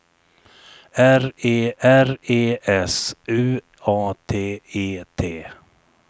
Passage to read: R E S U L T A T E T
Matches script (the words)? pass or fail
fail